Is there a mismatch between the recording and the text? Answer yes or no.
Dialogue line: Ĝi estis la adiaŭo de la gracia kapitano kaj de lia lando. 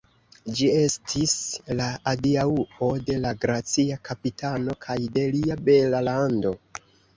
yes